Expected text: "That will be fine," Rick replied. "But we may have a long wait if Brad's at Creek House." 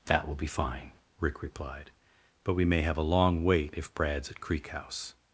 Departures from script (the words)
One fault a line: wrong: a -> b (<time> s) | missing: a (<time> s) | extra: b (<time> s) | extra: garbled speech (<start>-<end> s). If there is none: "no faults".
no faults